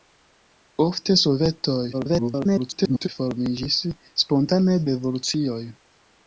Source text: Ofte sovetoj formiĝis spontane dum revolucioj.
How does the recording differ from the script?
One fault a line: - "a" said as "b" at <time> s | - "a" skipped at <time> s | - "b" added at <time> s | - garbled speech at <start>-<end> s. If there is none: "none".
- garbled speech at 1.9-3.1 s
- "dum" skipped at 4.8 s